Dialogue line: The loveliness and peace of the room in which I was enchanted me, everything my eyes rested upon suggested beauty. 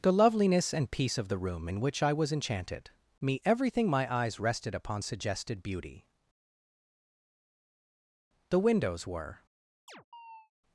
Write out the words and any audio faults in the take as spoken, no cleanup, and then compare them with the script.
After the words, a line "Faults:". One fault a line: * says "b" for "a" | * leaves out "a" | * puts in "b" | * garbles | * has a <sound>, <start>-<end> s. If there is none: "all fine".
The loveliness and peace of the room in which I was enchanted me, everything my eyes rested upon suggested beauty. The windows were
Faults:
* puts in "The windows were"
* has a chirp, 9.9-10.5 s